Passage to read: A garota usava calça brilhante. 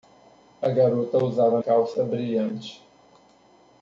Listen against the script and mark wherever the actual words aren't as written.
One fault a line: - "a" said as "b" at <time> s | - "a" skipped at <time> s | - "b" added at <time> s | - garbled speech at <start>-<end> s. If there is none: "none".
none